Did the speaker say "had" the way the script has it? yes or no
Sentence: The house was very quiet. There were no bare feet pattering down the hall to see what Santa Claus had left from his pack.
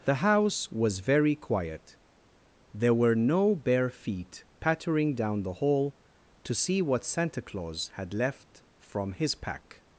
yes